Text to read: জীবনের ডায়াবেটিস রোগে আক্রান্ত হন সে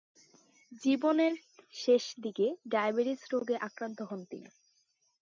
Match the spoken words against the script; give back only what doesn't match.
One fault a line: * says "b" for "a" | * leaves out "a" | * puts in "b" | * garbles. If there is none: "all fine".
* puts in "শেষদিকে"
* says "তিনি" for "সে"